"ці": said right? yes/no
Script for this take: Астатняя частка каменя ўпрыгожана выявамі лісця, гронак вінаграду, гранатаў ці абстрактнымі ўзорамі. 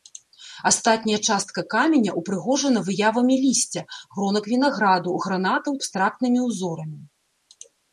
no